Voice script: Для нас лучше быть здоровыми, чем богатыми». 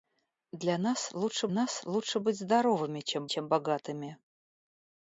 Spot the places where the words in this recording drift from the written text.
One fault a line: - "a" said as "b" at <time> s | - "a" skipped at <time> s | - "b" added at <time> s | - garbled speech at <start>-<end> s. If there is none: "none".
- "нас лучше" added at 1.5 s
- "чем" added at 3.2 s